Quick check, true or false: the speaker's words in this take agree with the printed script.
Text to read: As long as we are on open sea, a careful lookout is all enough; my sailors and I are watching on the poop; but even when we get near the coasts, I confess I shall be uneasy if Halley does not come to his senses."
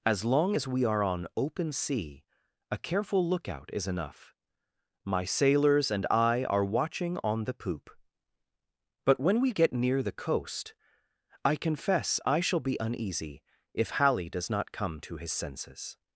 false